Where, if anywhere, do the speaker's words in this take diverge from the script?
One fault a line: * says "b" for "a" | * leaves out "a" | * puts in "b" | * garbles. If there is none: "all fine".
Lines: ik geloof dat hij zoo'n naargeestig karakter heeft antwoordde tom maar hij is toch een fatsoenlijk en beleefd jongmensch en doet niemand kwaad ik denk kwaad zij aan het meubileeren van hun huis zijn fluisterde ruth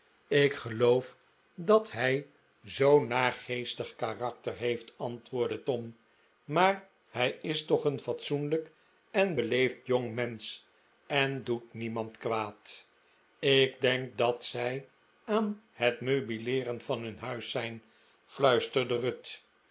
* says "dat" for "kwaad"